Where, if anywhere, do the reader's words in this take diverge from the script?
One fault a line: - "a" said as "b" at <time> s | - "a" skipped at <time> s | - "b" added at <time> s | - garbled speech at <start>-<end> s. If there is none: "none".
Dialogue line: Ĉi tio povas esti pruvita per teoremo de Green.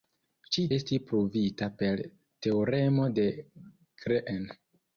- "tio povas" skipped at 0.6 s